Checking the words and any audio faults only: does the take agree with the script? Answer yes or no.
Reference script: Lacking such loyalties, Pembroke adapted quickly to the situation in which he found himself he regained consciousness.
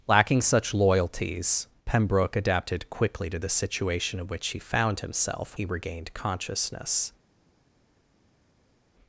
yes